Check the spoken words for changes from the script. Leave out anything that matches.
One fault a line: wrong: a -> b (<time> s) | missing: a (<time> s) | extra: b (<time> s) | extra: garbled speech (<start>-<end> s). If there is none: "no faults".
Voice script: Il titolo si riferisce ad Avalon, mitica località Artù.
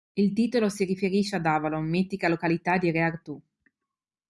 extra: di Re (2.8 s)